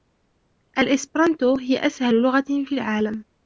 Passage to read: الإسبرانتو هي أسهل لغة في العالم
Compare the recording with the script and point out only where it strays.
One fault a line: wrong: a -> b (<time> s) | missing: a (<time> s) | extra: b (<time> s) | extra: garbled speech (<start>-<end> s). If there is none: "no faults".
no faults